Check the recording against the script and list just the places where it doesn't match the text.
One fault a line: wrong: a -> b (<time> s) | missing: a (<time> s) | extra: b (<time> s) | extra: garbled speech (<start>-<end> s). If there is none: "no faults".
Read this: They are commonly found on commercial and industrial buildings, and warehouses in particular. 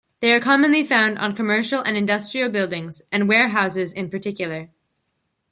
no faults